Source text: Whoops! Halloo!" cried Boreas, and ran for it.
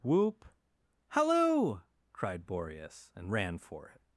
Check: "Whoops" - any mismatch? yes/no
yes